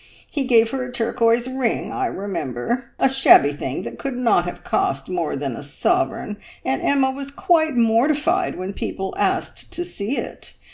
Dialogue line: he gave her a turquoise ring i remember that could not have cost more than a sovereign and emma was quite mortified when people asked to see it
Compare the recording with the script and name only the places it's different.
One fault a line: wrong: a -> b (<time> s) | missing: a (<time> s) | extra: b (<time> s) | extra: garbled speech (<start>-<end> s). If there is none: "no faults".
extra: a shabby thing (3.0 s)